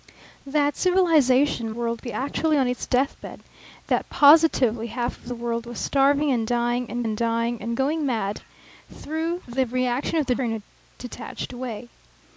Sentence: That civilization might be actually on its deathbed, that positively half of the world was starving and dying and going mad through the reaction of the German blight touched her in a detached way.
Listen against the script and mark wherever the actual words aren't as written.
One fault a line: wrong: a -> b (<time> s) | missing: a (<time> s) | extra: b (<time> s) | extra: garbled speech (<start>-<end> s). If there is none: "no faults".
wrong: might -> world (1.7 s)
extra: and dying and (7.0 s)
missing: German blight touched (10.4 s)